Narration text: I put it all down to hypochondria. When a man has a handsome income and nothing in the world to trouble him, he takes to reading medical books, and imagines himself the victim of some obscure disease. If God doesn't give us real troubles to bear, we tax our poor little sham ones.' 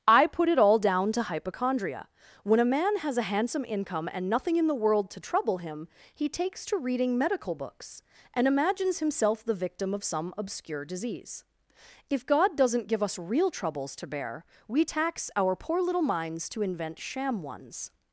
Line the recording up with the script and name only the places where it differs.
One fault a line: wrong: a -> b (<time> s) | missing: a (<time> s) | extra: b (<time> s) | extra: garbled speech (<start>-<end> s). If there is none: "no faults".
extra: minds to invent (16.0 s)